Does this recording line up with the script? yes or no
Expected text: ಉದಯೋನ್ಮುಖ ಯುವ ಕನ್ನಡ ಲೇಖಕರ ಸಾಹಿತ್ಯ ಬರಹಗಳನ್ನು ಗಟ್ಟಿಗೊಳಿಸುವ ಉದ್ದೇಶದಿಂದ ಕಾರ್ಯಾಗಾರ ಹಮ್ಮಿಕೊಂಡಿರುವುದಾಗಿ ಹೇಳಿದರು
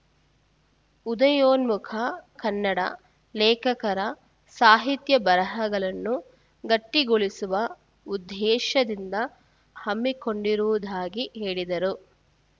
no